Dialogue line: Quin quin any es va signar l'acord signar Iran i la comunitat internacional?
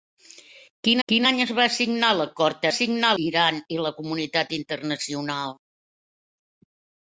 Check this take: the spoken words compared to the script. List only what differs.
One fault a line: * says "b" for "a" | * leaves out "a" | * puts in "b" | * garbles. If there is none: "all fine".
all fine